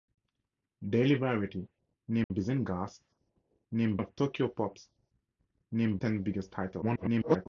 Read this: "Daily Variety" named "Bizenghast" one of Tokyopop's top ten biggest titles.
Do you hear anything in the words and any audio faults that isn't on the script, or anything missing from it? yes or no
yes